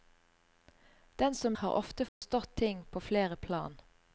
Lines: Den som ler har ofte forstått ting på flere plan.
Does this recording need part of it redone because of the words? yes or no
yes